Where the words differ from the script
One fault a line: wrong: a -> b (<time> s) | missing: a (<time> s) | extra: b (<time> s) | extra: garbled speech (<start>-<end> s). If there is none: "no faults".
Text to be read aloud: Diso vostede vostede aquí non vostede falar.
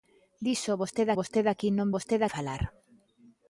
no faults